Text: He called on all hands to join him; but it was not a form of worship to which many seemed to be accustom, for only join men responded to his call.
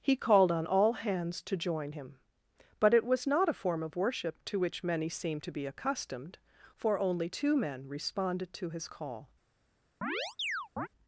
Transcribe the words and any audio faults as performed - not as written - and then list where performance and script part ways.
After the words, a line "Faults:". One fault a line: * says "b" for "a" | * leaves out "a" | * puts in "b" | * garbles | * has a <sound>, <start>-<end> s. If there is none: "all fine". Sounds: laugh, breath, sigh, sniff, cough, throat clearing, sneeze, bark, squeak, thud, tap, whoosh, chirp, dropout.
He called on all hands to join him; but it was not a form of worship to which many seemed to be accustomed, for only two men responded to his call.
Faults:
* says "accustomed" for "accustom"
* says "two" for "join"
* has a chirp, 10.0-10.9 s